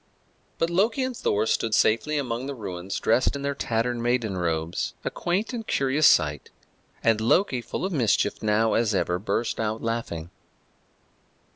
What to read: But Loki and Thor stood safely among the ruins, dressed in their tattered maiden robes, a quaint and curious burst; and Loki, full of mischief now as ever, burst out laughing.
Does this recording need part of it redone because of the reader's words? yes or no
yes